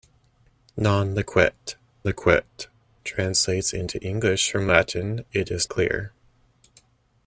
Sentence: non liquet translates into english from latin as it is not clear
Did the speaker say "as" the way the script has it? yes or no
no